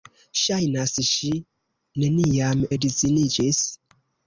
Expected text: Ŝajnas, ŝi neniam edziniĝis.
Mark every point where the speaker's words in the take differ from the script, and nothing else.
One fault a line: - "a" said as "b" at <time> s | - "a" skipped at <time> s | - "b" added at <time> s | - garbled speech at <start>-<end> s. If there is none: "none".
none